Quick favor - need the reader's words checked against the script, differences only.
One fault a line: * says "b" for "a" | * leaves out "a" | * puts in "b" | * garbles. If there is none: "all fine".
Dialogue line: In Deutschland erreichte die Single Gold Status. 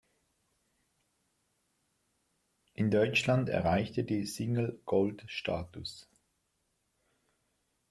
all fine